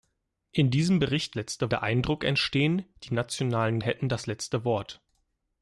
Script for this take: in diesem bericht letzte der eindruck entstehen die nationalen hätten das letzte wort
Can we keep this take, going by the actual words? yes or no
yes